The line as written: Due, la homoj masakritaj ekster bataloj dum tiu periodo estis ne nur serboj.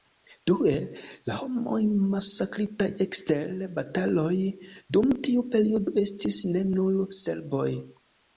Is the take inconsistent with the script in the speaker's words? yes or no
no